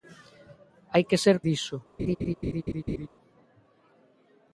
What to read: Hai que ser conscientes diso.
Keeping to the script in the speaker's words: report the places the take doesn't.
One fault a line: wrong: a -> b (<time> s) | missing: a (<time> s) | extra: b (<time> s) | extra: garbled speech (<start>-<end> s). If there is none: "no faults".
missing: conscientes (1.4 s)